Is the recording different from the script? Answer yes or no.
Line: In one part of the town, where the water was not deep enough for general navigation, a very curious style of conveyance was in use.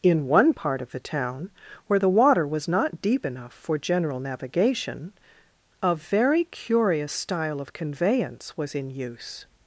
no